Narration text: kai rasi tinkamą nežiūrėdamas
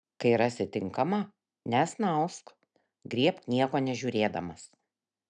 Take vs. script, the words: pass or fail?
fail